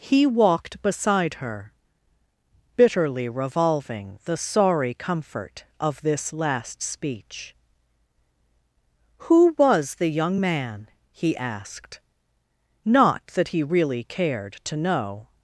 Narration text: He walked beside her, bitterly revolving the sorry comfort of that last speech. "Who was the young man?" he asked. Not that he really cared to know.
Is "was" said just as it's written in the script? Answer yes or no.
yes